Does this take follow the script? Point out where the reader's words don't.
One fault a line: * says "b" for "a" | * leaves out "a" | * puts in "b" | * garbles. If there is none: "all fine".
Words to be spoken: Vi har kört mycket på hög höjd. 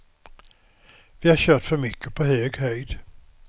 * puts in "för"